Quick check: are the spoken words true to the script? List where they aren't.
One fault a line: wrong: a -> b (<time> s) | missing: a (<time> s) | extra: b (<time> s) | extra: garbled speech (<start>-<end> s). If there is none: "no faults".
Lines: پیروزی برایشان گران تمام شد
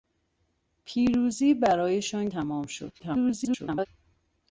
missing: گران (2.3 s)
extra: garbled speech (3.0-3.9 s)